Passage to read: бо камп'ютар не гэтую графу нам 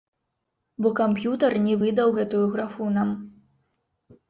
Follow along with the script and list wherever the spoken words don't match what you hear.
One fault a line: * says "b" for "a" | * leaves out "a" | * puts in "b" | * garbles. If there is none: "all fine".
* puts in "выдаў"